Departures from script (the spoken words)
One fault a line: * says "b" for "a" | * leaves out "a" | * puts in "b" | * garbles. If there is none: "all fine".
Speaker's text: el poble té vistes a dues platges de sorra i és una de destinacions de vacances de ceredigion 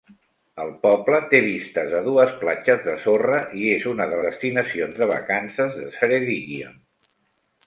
all fine